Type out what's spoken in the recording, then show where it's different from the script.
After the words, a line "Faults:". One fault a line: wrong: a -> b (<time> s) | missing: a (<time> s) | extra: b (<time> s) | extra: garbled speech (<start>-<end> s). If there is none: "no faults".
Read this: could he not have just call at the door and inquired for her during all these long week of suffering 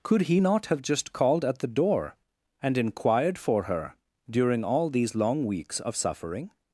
could he not have just called at the door and inquired for her during all these long weeks of suffering
Faults:
wrong: call -> called (1.1 s)
wrong: week -> weeks (5.5 s)